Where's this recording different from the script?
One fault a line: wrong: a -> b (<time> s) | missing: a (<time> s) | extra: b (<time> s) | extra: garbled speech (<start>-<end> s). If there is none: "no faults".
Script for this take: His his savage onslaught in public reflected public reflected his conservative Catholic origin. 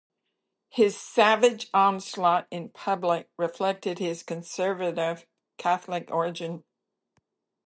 missing: his (1.0 s)
missing: public reflected (4.0 s)